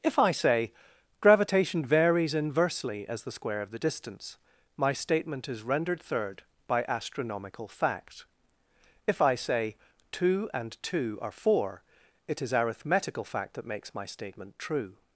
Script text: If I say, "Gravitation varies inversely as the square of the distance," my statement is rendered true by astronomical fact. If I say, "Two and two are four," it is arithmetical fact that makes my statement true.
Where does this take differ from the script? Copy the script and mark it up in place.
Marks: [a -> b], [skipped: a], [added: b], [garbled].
If I say, "Gravitation varies inversely as the square of the distance," my statement is rendered [true -> third] by astronomical fact. If I say, "Two and two are four," it is arithmetical fact that makes my statement true.